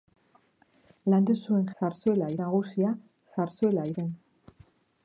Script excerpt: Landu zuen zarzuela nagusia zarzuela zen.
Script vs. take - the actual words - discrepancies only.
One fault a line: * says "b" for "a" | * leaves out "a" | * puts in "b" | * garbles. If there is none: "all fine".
all fine